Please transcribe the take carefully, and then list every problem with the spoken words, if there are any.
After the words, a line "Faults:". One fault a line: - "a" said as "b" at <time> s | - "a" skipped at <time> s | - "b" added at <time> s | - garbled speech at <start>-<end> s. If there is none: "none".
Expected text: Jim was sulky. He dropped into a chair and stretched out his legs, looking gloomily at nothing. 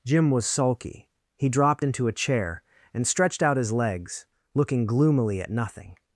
Jim was sulky. He dropped into a chair and stretched out his legs, looking gloomily at nothing.
Faults:
none